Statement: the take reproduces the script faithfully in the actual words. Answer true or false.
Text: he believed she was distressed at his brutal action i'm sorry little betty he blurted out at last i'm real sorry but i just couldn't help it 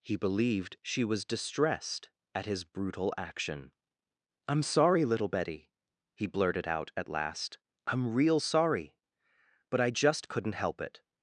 true